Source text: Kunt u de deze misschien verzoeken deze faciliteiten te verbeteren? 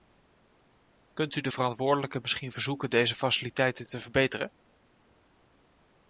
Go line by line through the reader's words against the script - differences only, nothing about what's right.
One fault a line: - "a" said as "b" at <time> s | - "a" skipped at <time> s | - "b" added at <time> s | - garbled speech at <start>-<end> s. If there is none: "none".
- "deze" said as "verantwoordelijken" at 1.5 s